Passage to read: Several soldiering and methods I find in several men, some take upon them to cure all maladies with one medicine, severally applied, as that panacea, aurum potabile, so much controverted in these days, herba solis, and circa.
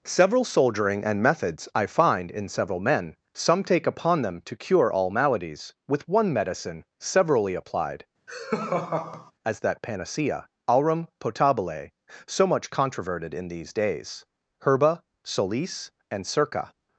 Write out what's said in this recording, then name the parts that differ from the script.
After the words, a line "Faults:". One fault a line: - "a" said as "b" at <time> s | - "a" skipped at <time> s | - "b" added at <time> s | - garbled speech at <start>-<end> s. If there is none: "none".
Several soldiering and methods I find in several men, some take upon them to cure all maladies with one medicine, severally applied, as that panacea, aurum potabile, so much controverted in these days, herba solis, and circa.
Faults:
none